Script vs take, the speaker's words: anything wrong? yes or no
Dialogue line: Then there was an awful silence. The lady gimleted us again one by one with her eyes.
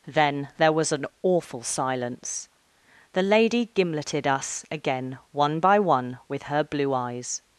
yes